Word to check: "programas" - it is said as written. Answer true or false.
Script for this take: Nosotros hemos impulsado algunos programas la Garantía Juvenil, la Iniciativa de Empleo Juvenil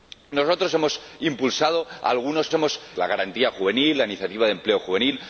false